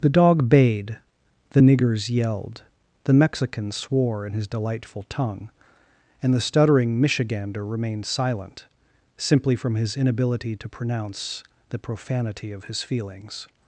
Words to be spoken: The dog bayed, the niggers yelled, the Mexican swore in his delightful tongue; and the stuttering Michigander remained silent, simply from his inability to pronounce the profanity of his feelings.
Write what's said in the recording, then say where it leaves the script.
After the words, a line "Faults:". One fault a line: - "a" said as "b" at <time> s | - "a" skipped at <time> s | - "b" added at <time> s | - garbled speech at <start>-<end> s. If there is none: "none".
The dog bayed, the niggers yelled, the Mexican swore in his delightful tongue; and the stuttering Michigander remained silent, simply from his inability to pronounce the profanity of his feelings.
Faults:
none